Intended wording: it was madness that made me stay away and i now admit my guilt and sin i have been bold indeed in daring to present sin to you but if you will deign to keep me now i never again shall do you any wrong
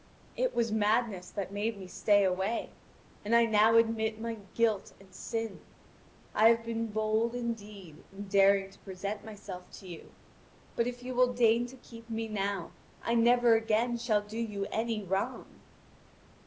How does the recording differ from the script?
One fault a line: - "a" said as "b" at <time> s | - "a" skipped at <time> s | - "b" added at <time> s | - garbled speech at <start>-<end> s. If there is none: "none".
- "sin" said as "myself" at 9.2 s